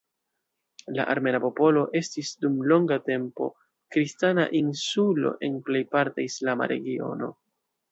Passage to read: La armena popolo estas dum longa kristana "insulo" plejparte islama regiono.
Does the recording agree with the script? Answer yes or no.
no